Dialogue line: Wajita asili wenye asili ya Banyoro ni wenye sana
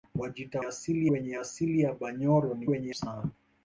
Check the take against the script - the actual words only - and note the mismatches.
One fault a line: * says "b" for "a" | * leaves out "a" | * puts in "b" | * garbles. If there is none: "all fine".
all fine